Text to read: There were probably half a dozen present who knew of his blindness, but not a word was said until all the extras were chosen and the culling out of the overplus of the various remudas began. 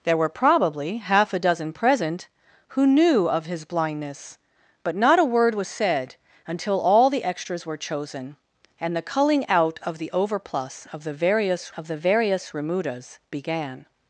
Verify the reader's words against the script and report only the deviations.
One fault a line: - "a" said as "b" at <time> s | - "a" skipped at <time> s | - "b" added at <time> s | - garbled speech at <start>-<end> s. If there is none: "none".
- "of the various" added at 11.8 s